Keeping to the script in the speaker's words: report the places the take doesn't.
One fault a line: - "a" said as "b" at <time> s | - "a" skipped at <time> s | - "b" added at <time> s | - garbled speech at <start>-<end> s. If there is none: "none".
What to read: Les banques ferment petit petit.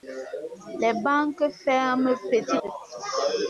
none